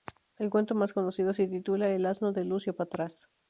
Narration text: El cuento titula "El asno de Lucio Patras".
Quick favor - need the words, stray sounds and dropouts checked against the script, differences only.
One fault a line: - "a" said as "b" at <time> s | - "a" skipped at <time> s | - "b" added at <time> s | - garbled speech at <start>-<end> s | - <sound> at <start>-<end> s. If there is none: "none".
- "más conocido se" added at 0.7 s